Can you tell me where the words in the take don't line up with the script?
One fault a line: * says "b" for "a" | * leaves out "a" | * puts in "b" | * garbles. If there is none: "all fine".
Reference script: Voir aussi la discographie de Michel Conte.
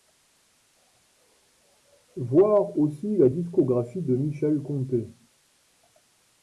all fine